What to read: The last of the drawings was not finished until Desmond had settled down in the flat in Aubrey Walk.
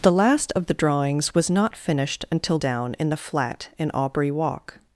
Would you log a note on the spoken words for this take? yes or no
yes